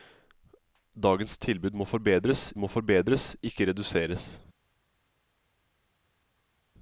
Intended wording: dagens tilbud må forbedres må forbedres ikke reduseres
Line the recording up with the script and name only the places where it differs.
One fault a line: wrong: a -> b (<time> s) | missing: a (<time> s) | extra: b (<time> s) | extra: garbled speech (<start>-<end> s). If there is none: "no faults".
no faults